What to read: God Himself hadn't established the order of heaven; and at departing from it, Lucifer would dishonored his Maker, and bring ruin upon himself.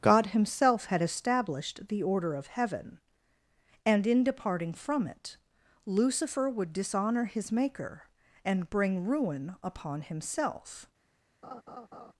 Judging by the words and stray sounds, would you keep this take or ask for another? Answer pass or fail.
fail